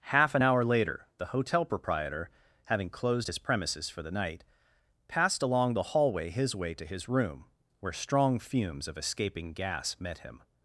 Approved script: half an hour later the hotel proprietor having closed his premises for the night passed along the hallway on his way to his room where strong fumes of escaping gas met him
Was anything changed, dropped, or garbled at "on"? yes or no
yes